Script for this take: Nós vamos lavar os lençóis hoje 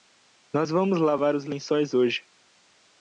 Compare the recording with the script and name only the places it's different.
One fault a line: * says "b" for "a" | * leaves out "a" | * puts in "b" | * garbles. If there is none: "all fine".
all fine